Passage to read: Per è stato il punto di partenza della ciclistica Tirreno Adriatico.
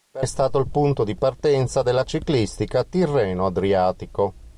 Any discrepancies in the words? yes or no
no